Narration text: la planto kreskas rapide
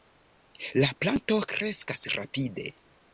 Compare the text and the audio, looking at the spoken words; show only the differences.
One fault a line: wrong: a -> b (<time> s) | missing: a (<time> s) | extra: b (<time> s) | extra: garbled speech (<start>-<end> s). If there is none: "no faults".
no faults